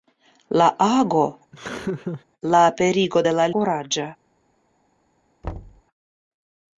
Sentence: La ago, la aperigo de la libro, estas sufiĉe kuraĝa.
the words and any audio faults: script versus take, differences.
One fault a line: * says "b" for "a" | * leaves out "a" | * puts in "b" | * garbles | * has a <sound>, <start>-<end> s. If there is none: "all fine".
* has a laugh, 1.5-2.2 s
* leaves out "libro estas sufiĉe"
* has a thud, 5.4-5.8 s